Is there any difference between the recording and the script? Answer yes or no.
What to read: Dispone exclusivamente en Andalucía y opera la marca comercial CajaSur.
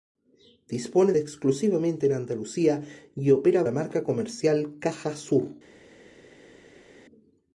no